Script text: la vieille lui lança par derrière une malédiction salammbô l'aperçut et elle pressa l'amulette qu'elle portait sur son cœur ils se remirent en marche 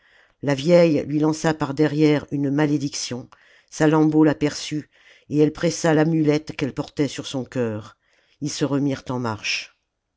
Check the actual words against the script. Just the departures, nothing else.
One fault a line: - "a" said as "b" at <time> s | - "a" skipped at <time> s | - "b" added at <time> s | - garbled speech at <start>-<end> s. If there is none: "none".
none